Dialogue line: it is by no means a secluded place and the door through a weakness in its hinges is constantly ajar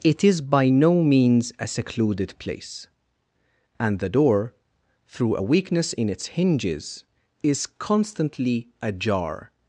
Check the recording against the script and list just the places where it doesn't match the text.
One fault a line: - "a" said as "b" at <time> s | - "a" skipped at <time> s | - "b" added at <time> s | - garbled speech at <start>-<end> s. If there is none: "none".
none